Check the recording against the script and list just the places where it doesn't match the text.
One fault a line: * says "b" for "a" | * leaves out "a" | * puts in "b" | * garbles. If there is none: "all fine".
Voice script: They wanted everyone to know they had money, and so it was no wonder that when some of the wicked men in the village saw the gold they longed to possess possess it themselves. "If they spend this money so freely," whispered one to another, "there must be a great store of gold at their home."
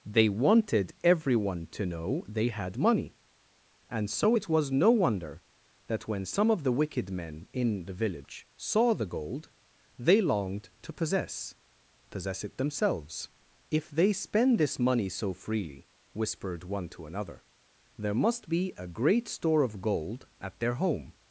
all fine